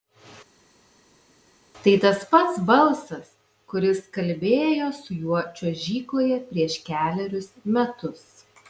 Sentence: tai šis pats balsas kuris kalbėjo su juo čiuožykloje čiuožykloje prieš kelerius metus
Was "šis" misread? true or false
true